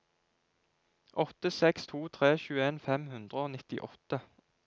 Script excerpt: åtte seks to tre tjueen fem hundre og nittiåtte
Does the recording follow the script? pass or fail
pass